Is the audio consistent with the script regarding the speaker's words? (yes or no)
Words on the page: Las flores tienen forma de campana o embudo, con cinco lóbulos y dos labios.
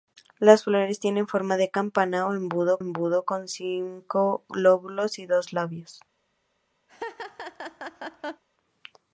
no